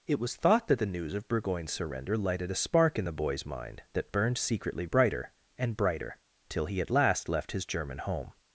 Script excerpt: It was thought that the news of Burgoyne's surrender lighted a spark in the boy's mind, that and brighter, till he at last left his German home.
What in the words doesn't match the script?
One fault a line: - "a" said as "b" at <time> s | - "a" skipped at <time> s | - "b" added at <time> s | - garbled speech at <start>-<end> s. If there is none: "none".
- "burned secretly brighter" added at 4.1 s